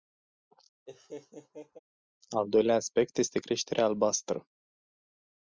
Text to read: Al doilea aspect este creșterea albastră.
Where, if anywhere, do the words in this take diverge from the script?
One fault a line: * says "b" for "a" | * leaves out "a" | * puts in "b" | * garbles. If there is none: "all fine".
all fine